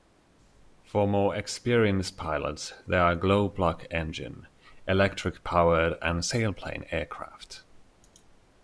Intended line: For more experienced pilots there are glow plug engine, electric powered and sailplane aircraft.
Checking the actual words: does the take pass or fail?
pass